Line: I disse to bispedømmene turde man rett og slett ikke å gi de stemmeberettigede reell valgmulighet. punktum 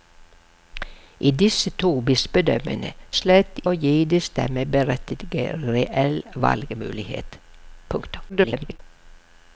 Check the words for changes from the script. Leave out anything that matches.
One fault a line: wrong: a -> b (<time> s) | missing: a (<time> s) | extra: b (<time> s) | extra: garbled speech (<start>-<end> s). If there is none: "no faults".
missing: turde man rett (2.9 s)
missing: ikke (3.6 s)
extra: garbled speech (8.3-8.8 s)